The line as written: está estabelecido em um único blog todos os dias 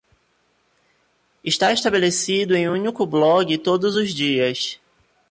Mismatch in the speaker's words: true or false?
false